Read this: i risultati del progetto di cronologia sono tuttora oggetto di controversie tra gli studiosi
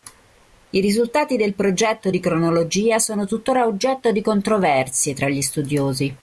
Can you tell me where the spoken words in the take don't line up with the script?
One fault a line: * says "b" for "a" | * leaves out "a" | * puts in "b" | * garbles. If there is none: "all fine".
all fine